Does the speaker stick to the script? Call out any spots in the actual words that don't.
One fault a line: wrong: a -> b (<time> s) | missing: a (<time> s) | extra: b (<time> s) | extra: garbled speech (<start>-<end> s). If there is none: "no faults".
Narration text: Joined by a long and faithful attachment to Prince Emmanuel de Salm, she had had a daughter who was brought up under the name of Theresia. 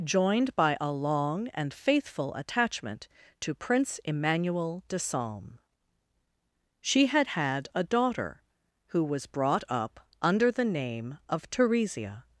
no faults